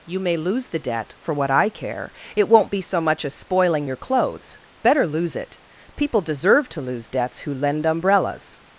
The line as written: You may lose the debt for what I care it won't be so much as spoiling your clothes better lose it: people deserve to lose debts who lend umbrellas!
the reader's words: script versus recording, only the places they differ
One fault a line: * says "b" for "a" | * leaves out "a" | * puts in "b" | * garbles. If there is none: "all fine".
all fine